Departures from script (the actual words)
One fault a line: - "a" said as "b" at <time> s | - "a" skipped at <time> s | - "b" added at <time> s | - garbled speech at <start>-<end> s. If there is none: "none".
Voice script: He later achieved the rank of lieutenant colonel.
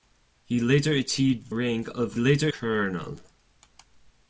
- "the" skipped at 1.5 s
- "lieutenant" said as "later" at 2.2 s